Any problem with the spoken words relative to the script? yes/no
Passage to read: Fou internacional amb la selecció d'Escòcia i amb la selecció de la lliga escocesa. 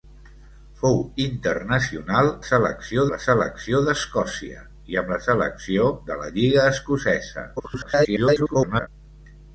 yes